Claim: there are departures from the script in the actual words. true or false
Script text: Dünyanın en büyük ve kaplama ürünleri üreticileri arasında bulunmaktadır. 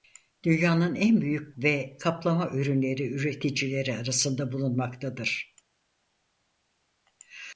false